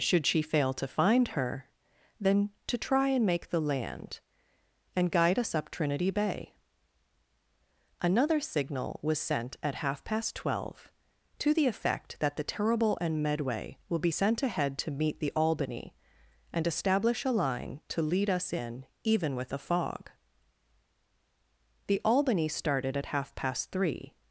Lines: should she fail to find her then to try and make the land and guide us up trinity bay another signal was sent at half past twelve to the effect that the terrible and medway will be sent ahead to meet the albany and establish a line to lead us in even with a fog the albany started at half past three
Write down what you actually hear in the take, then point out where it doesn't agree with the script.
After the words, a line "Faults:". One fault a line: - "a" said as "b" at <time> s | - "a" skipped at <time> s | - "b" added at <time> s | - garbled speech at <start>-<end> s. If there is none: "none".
should she fail to find her then to try and make the land and guide us up trinity bay another signal was sent at half past twelve to the effect that the terrible and medway will be sent ahead to meet the albany and establish a line to lead us in even with a fog the albany started at half past three
Faults:
none